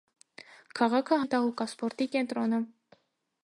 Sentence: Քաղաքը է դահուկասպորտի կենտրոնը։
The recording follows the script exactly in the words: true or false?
true